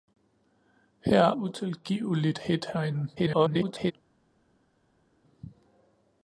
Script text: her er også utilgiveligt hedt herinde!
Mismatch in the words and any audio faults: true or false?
true